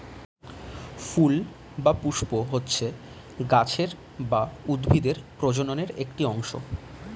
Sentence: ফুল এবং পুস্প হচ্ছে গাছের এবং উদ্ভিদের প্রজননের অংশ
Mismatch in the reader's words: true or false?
true